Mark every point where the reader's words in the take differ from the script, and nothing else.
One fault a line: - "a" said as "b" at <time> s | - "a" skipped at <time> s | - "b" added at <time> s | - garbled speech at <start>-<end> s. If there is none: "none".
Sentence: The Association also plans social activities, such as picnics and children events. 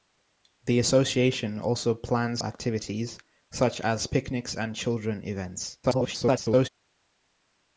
- "social" skipped at 2.4 s
- garbled speech at 5.8-6.7 s